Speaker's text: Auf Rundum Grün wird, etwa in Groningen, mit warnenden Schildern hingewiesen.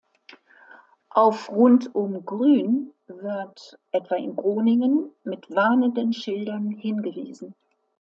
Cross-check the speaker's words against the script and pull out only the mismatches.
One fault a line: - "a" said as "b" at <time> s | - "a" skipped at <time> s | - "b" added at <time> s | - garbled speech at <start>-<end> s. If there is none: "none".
none